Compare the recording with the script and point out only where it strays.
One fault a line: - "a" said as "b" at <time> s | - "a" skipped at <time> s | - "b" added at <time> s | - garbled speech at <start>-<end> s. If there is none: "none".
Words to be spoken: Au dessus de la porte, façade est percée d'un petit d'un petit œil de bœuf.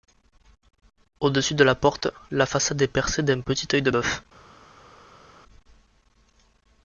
- "la" added at 2.3 s
- "d'un petit" skipped at 3.7 s